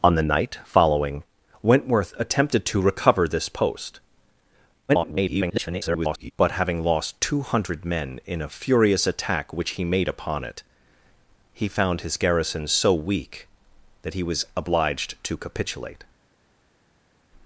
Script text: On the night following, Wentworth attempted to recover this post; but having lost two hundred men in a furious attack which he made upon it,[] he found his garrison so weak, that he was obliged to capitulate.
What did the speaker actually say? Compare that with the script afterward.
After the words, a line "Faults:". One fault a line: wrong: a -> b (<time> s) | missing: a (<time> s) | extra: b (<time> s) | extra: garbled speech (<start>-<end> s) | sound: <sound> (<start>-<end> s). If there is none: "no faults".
On the night following, Wentworth attempted to recover this post; [garbled] but having lost two hundred men in a furious attack which he made upon it,[] he found his garrison so weak, that he was obliged to capitulate.
Faults:
extra: garbled speech (4.9-6.3 s)